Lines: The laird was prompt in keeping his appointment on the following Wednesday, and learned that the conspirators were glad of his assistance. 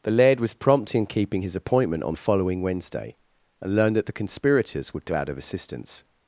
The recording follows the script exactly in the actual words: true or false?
false